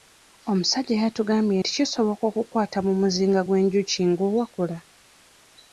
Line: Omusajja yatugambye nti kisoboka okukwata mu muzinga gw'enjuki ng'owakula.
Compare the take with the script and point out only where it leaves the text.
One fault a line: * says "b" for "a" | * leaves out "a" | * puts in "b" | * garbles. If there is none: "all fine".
all fine